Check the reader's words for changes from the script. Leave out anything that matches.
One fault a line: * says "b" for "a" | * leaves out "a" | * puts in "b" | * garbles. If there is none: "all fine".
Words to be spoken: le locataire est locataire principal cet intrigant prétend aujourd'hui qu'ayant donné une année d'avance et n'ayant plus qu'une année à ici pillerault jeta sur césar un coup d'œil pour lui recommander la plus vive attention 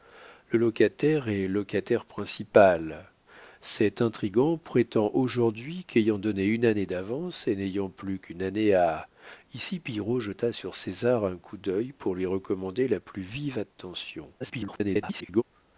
* garbles